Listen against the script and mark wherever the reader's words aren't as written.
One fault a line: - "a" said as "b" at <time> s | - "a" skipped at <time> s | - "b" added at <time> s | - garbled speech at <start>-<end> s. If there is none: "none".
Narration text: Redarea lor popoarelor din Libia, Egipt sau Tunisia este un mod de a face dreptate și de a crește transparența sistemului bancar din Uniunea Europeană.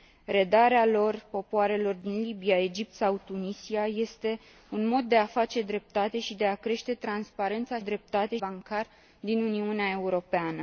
- "sistemului" said as "dreptate" at 7.8 s